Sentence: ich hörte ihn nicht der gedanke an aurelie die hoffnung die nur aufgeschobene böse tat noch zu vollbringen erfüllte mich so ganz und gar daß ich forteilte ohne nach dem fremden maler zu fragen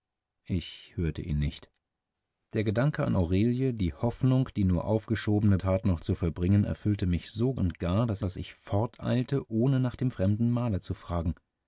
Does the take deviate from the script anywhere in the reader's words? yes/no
yes